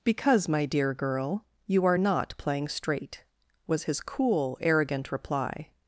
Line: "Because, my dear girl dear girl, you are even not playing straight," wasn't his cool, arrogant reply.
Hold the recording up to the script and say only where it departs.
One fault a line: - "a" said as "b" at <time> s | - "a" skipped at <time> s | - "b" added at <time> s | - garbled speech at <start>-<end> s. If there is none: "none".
- "dear girl" skipped at 1.4 s
- "even" skipped at 2.0 s
- "wasn't" said as "was" at 3.7 s